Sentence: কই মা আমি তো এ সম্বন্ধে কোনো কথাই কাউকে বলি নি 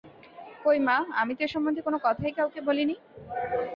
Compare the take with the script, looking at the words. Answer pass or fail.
pass